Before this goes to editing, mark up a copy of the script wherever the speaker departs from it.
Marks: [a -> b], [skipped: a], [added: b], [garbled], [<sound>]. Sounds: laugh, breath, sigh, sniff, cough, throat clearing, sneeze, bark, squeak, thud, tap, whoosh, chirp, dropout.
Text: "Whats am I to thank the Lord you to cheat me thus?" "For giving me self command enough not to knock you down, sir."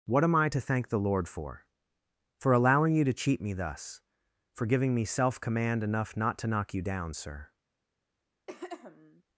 ["Whats -> What] am I to thank the Lord [added: for For allowing] you to cheat me thus?" "For giving me self command enough not to knock you down, sir." [throat clearing]